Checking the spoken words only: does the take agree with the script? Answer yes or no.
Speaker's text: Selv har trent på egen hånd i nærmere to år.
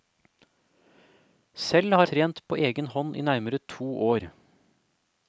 yes